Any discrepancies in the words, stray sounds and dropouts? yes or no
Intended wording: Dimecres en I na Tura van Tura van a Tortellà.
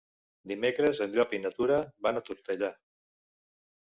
yes